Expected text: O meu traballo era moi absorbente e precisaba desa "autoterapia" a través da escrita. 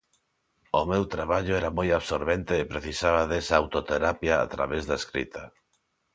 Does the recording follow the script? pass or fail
pass